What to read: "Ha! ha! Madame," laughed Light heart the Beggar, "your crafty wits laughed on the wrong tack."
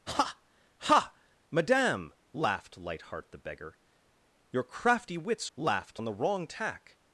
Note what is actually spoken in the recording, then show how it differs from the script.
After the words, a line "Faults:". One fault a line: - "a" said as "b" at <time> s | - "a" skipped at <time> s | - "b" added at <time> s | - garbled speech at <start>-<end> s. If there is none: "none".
"Ha! ha! Madame," laughed Light heart the Beggar, "your crafty wits laughed on the wrong tack."
Faults:
none